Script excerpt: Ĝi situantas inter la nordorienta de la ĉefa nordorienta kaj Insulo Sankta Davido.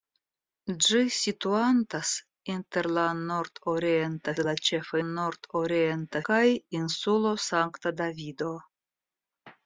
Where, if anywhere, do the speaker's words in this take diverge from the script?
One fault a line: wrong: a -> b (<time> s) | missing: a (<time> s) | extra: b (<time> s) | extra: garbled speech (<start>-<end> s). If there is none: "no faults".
no faults